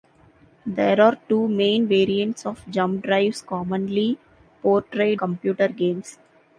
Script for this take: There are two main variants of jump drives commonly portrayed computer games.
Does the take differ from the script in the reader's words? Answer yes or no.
no